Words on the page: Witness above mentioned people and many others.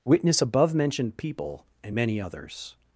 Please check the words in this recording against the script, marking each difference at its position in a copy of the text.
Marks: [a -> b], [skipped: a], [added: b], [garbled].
Witness above mentioned people and many others.